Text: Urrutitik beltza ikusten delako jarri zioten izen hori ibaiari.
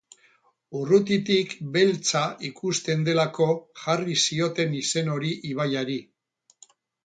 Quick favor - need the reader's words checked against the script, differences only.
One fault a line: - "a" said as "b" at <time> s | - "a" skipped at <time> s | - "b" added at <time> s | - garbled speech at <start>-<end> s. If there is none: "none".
none